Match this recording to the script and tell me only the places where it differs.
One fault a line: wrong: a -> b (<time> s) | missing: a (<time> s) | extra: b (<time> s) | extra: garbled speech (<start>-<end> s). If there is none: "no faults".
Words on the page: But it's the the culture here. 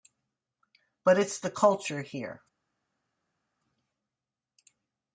missing: the (1.5 s)